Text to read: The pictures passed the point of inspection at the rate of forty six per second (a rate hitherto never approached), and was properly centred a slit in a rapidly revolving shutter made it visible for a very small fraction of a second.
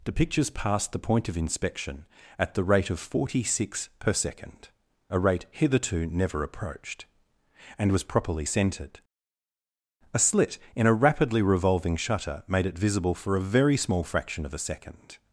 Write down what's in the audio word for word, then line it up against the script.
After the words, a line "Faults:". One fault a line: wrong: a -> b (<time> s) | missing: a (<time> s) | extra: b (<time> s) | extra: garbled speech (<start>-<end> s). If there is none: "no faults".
The pictures passed the point of inspection at the rate of forty six per second (a rate hitherto never approached), and was properly centred a slit in a rapidly revolving shutter made it visible for a very small fraction of a second.
Faults:
no faults